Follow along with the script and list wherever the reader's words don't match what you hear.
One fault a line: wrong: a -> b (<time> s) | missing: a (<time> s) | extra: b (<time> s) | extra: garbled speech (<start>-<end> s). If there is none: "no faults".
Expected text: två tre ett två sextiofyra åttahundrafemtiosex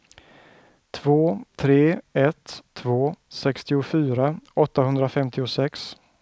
no faults